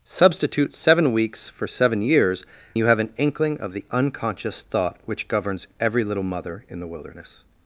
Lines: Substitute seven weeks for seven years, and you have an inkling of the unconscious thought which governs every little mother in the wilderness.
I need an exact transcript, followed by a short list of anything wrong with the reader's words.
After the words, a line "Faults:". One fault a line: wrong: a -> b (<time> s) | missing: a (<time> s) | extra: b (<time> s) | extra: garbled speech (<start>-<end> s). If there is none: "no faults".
Substitute seven weeks for seven years, you have an inkling of the unconscious thought which governs every little mother in the wilderness.
Faults:
missing: and (2.4 s)